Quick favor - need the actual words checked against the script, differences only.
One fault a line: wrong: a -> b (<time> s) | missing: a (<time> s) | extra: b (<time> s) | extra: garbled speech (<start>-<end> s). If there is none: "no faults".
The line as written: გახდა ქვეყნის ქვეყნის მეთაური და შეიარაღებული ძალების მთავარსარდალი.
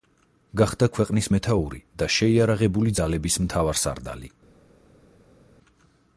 missing: ქვეყნის (1.3 s)